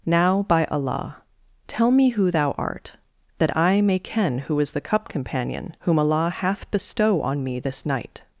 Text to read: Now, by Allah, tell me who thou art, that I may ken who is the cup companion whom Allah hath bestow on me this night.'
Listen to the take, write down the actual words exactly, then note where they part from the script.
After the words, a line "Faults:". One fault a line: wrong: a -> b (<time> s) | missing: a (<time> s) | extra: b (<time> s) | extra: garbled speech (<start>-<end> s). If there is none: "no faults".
Now, by Allah, tell me who thou art, that I may ken who is the cup companion whom Allah hath bestow on me this night.'
Faults:
no faults